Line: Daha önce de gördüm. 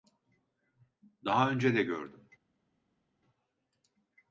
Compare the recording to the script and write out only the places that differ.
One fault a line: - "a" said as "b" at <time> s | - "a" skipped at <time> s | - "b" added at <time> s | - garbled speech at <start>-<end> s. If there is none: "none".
none